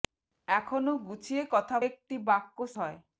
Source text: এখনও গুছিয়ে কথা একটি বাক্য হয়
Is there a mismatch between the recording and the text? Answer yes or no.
no